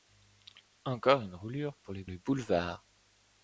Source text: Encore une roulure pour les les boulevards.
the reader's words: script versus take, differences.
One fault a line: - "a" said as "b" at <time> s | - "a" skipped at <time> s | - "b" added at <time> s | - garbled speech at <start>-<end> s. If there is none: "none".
none